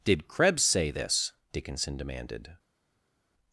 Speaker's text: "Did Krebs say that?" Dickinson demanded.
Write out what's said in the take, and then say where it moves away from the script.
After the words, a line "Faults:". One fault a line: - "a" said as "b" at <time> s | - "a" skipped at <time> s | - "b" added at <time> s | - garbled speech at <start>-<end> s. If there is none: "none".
"Did Krebs say this?" Dickinson demanded.
Faults:
- "that" said as "this" at 0.9 s